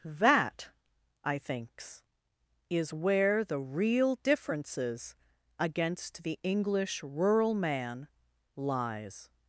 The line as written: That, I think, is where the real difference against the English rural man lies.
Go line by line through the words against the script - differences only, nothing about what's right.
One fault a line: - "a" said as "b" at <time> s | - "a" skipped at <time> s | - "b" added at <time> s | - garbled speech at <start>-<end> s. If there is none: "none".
- "think" said as "thinks" at 1.4 s
- "difference" said as "differences" at 4.2 s